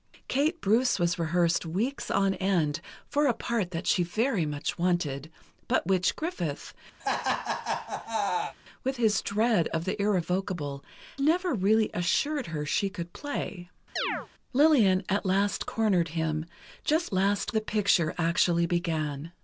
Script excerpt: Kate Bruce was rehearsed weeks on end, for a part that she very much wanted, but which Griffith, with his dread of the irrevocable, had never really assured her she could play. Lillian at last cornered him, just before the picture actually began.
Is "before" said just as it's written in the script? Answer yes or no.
no